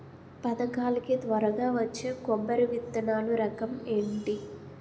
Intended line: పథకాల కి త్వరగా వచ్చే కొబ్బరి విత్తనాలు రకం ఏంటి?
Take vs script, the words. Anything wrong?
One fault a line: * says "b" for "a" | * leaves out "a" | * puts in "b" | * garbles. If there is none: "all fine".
all fine